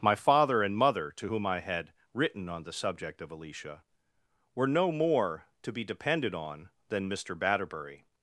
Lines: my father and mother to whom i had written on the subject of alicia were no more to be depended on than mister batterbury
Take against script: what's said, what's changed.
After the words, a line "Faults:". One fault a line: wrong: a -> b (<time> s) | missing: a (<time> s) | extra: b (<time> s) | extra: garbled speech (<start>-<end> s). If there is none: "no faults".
my father and mother to whom i had written on the subject of alicia were no more to be depended on than mister batterbury
Faults:
no faults